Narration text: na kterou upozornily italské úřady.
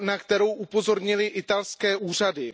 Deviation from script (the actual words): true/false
false